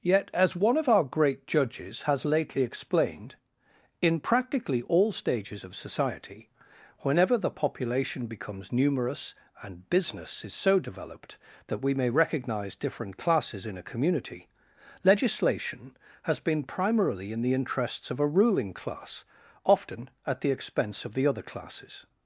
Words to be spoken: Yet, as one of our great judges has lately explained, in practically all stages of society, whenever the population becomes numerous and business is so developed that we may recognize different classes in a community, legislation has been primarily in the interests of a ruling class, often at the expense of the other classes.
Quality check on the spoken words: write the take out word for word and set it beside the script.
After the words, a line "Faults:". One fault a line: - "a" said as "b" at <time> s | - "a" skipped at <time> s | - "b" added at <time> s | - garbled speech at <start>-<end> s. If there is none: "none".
Yet, as one of our great judges has lately explained, in practically all stages of society, whenever the population becomes numerous and business is so developed that we may recognize different classes in a community, legislation has been primarily in the interests of a ruling class, often at the expense of the other classes.
Faults:
none